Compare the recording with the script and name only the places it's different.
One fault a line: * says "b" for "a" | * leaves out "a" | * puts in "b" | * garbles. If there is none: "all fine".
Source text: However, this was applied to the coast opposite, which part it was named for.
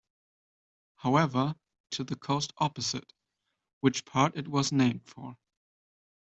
* leaves out "this was applied"